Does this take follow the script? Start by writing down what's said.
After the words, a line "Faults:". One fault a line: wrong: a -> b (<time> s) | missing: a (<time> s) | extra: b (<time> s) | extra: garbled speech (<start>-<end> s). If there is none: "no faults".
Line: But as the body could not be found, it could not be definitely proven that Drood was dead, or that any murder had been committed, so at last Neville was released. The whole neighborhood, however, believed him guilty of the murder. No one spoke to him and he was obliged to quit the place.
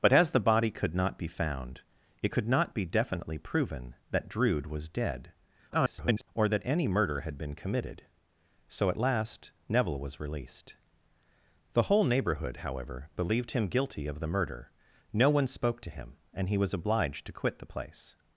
But as the body could not be found, it could not be definitely proven that Drood was dead, [garbled] or that any murder had been committed, so at last Neville was released. The whole neighborhood, however, believed him guilty of the murder. No one spoke to him and he was obliged to quit the place.
Faults:
extra: garbled speech (5.7-6.3 s)